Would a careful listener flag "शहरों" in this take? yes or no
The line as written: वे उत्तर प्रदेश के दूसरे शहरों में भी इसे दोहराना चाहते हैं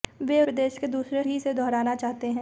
yes